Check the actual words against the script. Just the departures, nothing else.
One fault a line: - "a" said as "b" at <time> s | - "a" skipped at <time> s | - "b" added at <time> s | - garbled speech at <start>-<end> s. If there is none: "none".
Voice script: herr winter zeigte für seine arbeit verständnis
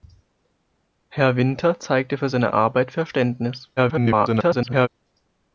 - garbled speech at 3.8-4.9 s